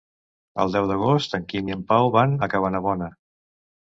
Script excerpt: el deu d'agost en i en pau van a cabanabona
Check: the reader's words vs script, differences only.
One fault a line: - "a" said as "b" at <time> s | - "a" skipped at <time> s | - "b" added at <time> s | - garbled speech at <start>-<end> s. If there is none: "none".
- "quim" added at 1.5 s